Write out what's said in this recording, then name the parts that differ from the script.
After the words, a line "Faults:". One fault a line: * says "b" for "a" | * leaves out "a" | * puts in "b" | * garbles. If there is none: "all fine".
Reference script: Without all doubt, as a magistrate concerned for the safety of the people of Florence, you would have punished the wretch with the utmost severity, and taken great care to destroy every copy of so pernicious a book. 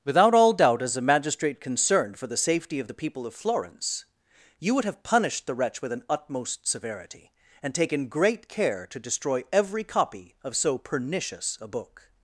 Without all doubt, as a magistrate concerned for the safety of the people of Florence, you would have punished the wretch with an utmost severity, and taken great care to destroy every copy of so pernicious a book.
Faults:
* says "an" for "the"